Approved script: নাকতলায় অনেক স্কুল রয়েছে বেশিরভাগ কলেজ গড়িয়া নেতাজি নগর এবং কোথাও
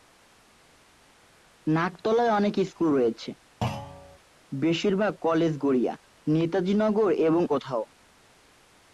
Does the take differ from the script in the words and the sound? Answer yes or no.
yes